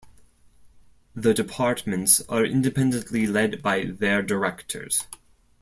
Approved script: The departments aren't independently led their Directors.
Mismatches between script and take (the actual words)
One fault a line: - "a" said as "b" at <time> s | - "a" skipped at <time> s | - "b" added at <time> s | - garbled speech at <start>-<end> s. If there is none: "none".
- "aren't" said as "are" at 2.3 s
- "by" added at 3.6 s